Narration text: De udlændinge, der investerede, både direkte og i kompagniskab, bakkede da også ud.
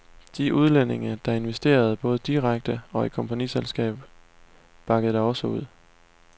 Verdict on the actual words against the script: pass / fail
pass